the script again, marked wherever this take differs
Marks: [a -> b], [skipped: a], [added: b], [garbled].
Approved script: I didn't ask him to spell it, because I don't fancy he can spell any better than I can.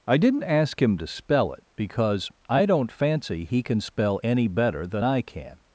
I didn't ask him to spell it, because I don't fancy he can spell any better than I can.